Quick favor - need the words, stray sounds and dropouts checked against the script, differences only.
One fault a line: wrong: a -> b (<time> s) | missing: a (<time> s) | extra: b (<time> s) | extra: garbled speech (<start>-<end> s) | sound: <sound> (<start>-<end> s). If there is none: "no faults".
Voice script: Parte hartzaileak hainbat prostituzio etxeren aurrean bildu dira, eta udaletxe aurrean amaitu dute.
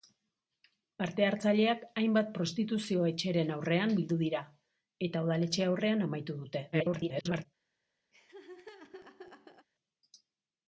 extra: garbled speech (6.7-7.5 s)
sound: laugh (8.1-9.7 s)